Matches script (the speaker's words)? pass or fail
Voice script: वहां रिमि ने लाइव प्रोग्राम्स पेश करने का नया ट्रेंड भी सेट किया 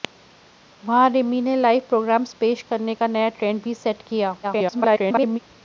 fail